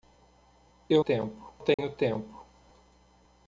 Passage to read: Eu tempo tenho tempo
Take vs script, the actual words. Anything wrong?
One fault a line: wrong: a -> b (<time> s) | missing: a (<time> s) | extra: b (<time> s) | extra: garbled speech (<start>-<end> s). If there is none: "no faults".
no faults